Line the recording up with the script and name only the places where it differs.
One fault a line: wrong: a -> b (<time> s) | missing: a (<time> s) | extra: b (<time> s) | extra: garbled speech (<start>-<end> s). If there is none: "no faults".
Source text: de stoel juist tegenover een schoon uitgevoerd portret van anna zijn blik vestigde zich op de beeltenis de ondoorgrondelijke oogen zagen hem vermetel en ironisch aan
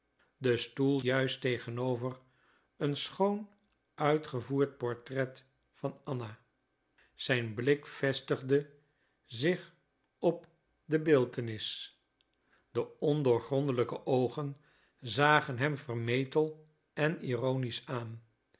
no faults